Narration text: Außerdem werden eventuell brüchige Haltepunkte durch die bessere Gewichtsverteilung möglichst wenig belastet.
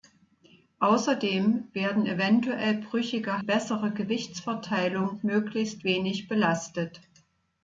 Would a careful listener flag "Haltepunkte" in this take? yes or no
yes